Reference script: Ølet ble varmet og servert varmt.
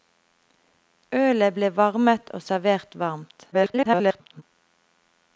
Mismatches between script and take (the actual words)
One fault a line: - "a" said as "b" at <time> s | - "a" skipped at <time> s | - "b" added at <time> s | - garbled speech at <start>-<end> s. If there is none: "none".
- garbled speech at 3.5-4.4 s